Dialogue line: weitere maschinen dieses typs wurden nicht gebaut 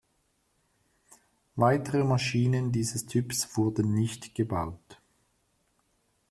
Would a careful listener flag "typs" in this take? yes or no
no